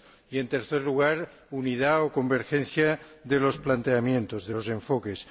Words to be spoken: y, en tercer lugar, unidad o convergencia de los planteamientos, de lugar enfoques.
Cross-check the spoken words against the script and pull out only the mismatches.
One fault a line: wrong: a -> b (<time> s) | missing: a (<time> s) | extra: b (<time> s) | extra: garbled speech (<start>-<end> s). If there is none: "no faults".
wrong: lugar -> los (4.5 s)